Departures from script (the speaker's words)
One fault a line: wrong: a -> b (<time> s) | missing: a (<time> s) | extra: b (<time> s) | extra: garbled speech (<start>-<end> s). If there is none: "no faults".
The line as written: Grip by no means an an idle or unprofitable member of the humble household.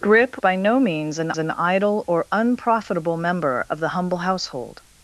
no faults